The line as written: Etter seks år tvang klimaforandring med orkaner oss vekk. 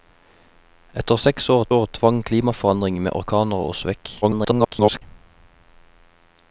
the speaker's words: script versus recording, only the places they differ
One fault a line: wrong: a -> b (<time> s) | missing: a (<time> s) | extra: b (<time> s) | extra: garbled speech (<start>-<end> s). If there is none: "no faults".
extra: år (1.8 s)
extra: garbled speech (4.2-5.0 s)